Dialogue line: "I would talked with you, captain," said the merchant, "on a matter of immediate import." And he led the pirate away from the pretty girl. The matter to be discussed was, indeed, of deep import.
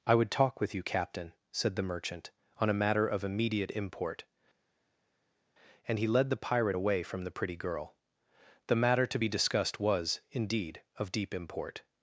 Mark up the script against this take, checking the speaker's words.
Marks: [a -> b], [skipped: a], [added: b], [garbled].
"I would [talked -> talk] with you, captain," said the merchant, "on a matter of immediate import." And he led the pirate away from the pretty girl. The matter to be discussed was, indeed, of deep import.